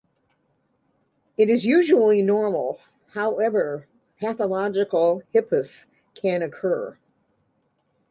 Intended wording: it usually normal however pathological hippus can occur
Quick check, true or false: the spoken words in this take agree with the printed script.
false